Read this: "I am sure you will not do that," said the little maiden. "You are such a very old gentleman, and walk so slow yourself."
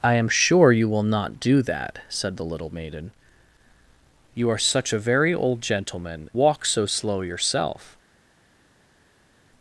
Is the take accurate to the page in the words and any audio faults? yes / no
no